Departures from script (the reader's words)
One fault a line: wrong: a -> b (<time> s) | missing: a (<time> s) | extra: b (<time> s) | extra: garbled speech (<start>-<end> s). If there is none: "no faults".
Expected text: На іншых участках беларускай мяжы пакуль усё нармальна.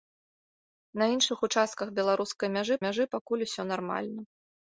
extra: мяжы (2.9 s)